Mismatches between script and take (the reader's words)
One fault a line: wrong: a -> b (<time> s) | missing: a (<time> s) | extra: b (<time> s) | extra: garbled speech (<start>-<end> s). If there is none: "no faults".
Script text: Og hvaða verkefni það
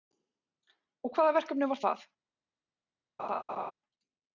extra: var (1.7 s)